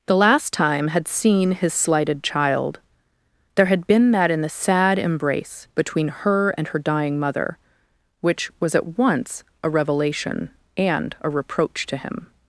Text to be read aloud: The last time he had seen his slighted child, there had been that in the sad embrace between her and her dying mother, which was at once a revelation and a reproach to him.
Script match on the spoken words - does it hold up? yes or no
no